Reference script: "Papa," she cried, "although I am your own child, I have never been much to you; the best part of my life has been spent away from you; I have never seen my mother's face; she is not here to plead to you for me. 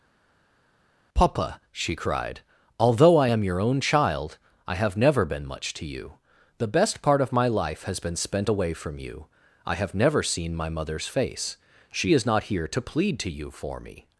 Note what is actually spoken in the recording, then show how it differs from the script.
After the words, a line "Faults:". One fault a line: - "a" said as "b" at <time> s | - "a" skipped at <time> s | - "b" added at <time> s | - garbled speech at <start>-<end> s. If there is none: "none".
"Papa," she cried, "although I am your own child, I have never been much to you; the best part of my life has been spent away from you; I have never seen my mother's face; she is not here to plead to you for me.
Faults:
none